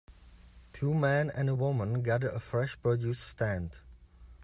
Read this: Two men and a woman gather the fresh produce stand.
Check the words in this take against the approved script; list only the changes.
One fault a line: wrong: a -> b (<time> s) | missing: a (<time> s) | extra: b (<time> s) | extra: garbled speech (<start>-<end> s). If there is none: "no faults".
wrong: the -> a (2.3 s)